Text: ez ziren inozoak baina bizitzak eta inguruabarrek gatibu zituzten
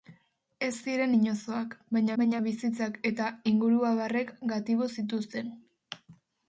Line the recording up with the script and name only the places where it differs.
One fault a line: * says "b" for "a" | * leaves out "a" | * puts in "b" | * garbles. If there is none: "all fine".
* puts in "baina"